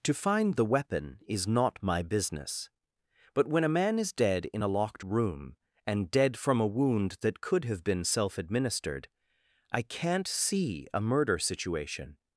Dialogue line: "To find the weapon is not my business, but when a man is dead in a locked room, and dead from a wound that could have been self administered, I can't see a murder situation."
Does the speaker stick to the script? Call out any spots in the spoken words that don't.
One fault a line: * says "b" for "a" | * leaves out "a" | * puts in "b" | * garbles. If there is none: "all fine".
all fine